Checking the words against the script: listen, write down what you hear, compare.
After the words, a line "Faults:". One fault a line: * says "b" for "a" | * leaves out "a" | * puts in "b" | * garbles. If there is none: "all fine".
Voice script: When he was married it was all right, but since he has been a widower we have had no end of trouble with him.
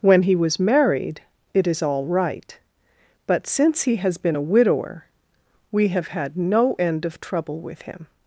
When he was married it is all right, but since he has been a widower we have had no end of trouble with him.
Faults:
* says "is" for "was"